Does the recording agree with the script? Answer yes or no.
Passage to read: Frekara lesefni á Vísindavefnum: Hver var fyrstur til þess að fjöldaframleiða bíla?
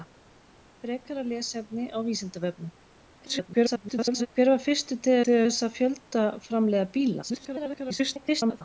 no